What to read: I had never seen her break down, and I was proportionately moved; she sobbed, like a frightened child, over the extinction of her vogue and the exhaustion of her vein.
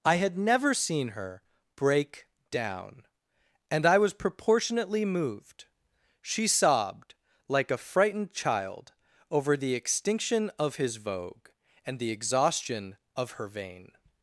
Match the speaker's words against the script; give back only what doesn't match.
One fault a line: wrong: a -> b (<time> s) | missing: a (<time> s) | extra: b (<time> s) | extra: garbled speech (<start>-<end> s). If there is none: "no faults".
wrong: her -> his (10.8 s)